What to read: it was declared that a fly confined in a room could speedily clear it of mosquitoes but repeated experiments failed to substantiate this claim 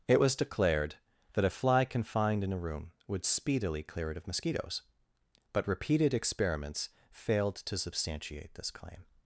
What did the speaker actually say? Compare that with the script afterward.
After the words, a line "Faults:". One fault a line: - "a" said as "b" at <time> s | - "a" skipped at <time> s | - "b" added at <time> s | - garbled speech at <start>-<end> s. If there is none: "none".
it was declared that a fly confined in a room would speedily clear it of mosquitoes but repeated experiments failed to substantiate this claim
Faults:
- "could" said as "would" at 3.1 s